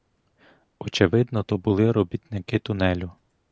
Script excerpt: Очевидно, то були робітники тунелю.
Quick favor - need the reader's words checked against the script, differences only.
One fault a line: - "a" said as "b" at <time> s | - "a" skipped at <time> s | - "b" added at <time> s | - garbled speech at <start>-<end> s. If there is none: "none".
none